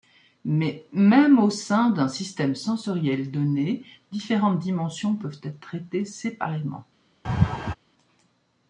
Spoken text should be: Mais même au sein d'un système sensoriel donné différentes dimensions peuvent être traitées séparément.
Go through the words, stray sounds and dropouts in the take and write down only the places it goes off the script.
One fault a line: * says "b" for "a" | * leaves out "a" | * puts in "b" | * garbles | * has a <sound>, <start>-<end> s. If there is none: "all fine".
* has a laugh, 7.2-7.7 s